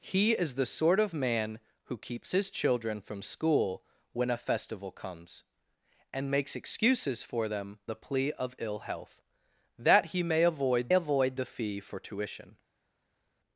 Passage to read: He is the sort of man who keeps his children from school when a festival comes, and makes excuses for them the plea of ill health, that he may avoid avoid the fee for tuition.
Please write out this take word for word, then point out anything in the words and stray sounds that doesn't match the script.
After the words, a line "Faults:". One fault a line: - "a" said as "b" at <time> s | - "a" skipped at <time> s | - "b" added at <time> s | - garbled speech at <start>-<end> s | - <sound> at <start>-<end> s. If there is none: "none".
He is the sort of man who keeps his children from school when a festival comes, and makes excuses for them the plea of ill health, that he may avoid avoid the fee for tuition.
Faults:
none